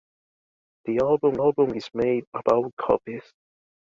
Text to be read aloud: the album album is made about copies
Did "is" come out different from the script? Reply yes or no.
no